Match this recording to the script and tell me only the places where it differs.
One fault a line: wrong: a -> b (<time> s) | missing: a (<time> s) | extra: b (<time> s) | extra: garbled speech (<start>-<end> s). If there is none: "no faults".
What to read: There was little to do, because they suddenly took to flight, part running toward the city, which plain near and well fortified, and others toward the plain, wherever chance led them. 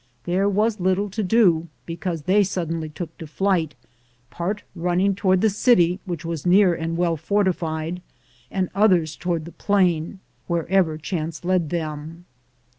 wrong: plain -> was (6.2 s)